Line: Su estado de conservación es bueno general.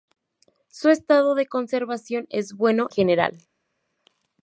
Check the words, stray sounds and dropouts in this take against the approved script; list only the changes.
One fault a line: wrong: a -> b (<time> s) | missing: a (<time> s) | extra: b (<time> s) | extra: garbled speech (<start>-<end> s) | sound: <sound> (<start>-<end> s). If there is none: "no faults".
no faults